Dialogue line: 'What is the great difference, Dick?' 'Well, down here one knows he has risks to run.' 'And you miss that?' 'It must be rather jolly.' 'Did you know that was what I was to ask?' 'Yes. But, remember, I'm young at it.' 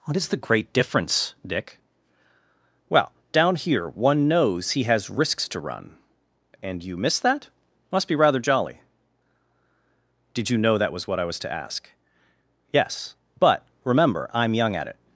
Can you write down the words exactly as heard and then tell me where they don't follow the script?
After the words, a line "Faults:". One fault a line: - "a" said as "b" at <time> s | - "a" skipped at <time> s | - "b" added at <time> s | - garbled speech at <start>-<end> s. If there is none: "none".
'What is the great difference, Dick?' 'Well, down here one knows he has risks to run.' 'And you miss that?' must be rather jolly.' 'Did you know that was what I was to ask?' 'Yes. But, remember, I'm young at it.'
Faults:
- "It" skipped at 7.5 s